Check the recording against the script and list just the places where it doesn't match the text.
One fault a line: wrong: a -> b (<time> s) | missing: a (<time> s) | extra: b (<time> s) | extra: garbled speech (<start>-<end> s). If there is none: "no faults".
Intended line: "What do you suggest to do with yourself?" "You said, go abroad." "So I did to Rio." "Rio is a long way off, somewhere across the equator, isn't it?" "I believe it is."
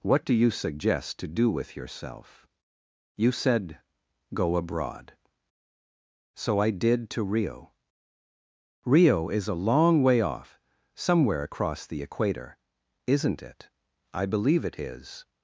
no faults